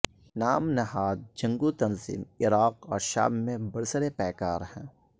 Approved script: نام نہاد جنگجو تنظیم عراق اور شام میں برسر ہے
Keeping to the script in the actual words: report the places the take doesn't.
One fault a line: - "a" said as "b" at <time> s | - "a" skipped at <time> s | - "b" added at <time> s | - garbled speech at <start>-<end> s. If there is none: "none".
- "پیکار" added at 4.2 s